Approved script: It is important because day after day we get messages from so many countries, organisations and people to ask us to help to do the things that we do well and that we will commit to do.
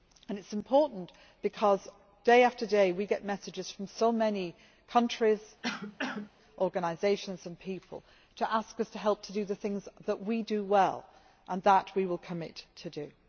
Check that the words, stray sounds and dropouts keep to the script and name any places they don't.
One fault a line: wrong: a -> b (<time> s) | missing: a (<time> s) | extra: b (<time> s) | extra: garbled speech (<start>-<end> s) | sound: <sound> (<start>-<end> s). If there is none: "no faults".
sound: cough (5.6-6.3 s)